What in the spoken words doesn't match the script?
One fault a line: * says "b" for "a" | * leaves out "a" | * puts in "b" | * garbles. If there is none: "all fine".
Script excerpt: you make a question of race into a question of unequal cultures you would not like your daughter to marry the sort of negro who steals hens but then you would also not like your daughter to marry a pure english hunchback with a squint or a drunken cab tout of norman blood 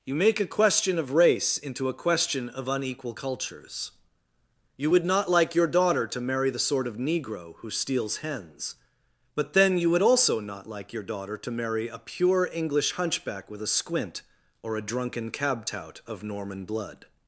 all fine